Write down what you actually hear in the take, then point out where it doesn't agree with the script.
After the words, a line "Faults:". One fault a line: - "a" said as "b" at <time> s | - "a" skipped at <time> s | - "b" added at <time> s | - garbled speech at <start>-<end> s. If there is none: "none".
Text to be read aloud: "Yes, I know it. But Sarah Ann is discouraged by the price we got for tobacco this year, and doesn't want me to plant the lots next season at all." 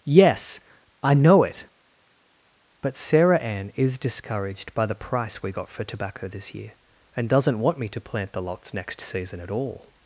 "Yes, I know it. But Sarah Ann is discouraged by the price we got for tobacco this year, and doesn't want me to plant the lots next season at all."
Faults:
none